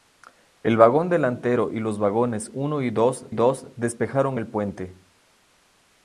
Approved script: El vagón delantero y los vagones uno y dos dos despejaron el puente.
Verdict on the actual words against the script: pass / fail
pass